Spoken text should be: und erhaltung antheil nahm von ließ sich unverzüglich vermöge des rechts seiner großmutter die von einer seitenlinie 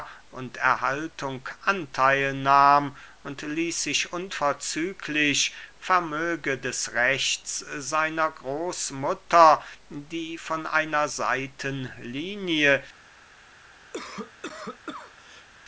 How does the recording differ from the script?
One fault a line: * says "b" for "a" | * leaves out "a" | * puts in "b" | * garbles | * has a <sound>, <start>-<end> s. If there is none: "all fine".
* says "und" for "von"
* has a cough, 13.9-15.5 s